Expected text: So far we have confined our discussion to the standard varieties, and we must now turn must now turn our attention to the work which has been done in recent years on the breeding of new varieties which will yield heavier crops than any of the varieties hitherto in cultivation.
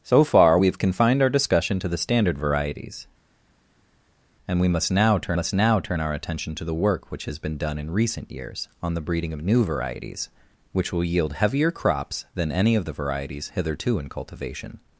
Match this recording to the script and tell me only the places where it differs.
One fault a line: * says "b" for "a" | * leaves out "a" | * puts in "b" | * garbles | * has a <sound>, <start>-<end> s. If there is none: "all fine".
all fine